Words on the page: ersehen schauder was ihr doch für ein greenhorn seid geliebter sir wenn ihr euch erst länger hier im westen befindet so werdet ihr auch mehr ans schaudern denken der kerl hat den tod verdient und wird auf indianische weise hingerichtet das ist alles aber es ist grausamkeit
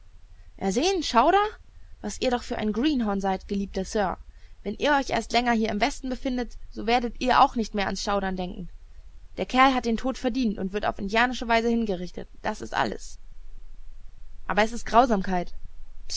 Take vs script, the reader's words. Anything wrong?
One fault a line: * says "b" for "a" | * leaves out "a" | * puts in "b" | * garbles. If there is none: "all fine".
* puts in "nicht"